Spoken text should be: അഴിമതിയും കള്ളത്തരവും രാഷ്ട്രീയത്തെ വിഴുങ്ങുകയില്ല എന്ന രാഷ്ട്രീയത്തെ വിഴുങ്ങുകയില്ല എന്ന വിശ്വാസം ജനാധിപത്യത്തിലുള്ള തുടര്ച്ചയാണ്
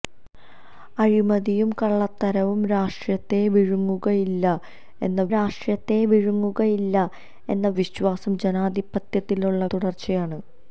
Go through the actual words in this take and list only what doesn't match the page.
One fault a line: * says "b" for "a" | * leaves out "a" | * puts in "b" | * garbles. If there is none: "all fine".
all fine